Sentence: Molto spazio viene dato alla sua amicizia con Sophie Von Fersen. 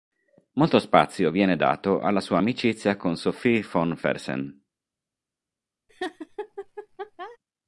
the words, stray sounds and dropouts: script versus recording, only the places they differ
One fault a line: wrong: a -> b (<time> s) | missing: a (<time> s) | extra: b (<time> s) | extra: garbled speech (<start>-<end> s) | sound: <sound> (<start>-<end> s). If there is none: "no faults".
sound: laugh (5.9-7.4 s)